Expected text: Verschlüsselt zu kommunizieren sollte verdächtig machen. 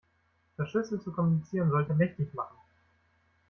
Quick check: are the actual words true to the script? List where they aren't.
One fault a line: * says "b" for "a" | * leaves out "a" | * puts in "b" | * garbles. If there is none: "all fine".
all fine